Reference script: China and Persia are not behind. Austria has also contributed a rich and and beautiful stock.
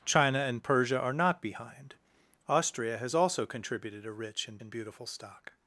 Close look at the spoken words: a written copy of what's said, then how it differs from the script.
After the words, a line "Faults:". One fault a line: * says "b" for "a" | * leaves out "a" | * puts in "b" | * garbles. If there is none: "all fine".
China and Persia are not behind. Austria has also contributed a rich and and beautiful stock.
Faults:
all fine